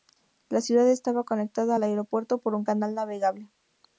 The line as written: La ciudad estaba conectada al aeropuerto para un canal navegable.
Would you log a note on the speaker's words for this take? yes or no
yes